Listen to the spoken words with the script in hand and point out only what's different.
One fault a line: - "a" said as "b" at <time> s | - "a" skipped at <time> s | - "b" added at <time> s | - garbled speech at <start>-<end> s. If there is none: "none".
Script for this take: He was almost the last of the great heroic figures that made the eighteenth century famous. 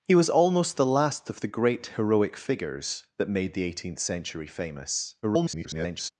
- garbled speech at 5.2-6.1 s